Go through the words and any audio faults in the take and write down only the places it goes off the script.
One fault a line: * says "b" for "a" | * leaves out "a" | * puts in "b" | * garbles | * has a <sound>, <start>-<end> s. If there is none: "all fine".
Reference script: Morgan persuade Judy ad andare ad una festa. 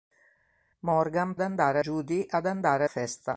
* says "andare" for "persuade"
* leaves out "ad una"